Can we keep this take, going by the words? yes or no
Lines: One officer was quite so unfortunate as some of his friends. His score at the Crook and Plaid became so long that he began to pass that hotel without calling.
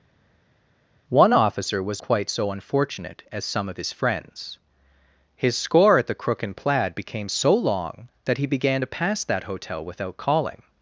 yes